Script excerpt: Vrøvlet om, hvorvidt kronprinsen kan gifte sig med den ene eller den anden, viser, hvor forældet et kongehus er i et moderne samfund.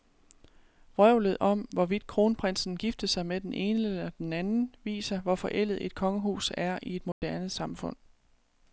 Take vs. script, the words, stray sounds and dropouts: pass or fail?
fail